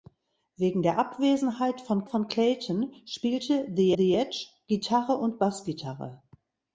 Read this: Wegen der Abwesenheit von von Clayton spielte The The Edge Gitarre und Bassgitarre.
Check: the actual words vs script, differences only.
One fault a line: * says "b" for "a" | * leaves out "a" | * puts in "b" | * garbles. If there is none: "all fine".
all fine